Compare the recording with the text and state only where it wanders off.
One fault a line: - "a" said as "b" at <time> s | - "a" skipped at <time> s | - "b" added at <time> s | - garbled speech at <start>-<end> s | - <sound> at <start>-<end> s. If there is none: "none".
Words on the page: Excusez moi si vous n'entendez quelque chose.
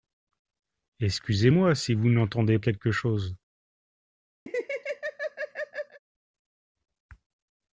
- laugh at 4.5-6.0 s